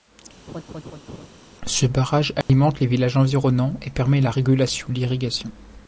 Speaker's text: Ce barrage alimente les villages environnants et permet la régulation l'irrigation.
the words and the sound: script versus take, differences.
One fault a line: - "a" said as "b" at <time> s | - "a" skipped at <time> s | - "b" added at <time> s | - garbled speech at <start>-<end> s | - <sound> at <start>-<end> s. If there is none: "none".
- laugh at 0.5-1.3 s
- dropout at 2.4-2.5 s